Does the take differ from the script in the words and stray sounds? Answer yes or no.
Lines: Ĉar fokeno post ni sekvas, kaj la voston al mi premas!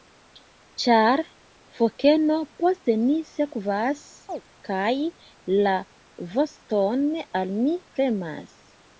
yes